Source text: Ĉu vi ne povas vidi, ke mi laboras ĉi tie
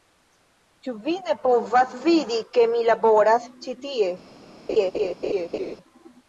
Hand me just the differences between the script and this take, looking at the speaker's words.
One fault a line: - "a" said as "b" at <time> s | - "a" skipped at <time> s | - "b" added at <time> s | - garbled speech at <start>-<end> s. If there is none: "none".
none